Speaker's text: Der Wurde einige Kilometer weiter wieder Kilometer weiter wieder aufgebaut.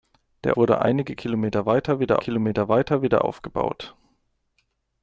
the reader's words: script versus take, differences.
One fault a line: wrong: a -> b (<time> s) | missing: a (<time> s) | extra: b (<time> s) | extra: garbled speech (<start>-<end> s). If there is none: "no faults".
no faults